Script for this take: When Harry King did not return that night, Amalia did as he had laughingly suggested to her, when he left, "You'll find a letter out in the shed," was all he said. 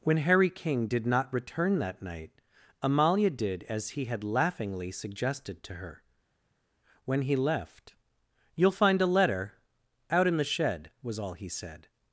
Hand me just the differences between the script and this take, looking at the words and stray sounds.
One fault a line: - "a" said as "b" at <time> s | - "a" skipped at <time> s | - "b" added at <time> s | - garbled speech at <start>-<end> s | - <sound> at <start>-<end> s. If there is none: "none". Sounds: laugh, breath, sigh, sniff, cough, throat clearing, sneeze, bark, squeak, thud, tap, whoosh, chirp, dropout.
none